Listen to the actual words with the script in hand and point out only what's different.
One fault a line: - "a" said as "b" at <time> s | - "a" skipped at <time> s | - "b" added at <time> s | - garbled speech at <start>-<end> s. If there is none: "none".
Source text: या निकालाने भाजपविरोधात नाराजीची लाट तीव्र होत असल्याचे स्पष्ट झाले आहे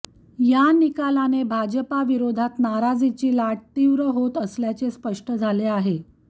none